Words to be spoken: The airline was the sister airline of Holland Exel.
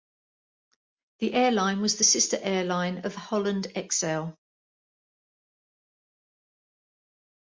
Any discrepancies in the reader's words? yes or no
no